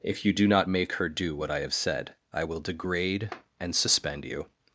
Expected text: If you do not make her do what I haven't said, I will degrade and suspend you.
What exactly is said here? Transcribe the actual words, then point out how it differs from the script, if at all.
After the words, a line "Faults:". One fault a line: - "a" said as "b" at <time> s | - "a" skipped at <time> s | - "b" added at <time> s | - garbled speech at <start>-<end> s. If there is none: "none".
If you do not make her do what I have said, I will degrade and suspend you.
Faults:
- "haven't" said as "have" at 1.6 s